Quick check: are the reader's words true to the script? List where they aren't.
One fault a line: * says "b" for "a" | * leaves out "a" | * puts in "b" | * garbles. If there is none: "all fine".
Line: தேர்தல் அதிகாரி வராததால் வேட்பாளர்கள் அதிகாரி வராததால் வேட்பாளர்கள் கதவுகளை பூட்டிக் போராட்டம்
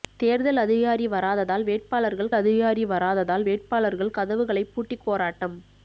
all fine